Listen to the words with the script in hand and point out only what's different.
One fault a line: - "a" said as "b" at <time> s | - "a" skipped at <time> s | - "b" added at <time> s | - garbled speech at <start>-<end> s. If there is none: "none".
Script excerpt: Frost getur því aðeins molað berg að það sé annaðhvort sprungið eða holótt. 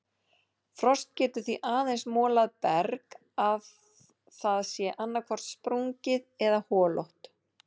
none